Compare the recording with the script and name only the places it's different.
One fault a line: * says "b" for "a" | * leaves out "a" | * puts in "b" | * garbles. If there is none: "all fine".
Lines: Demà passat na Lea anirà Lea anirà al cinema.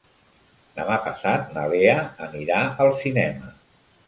* leaves out "Lea anirà"